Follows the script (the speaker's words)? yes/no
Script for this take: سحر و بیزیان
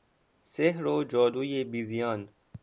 no